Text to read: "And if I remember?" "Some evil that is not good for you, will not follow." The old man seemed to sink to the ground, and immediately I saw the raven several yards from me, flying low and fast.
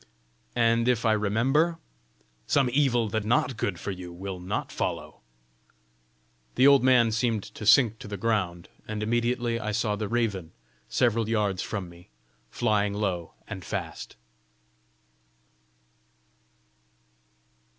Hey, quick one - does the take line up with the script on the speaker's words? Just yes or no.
no